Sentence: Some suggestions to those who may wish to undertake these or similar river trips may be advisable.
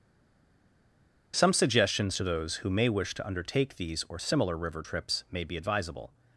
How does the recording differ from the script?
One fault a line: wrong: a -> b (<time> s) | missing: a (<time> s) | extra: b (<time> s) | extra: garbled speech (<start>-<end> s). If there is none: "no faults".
no faults